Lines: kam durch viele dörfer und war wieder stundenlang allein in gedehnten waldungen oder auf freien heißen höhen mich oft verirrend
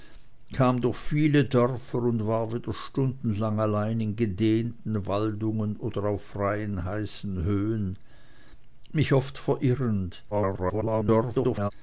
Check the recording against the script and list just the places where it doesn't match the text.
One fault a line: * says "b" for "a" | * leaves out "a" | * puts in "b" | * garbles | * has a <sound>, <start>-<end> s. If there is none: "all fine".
* garbles